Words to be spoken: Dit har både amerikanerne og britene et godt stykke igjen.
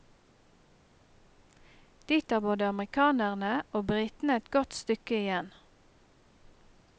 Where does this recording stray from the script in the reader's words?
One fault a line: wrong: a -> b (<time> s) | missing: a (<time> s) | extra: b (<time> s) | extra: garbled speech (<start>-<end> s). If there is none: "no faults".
no faults